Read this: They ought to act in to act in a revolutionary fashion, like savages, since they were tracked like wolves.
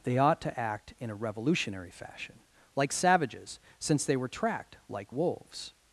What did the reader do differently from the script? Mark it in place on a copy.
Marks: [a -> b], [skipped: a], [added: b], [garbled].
They ought to act in [skipped: to act in] a revolutionary fashion, like savages, since they were tracked like wolves.